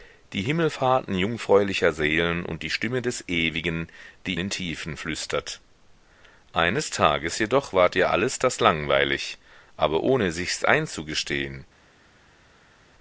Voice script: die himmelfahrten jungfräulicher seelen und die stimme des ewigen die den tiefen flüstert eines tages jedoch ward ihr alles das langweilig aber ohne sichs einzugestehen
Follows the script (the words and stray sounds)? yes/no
yes